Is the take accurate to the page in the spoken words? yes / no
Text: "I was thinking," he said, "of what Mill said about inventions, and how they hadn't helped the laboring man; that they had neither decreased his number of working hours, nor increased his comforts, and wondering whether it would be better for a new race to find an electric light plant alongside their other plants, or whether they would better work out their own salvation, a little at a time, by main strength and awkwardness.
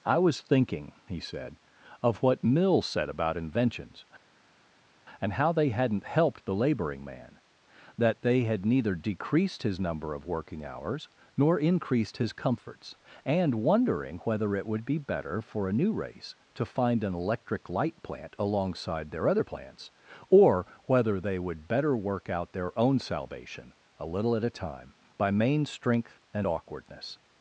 yes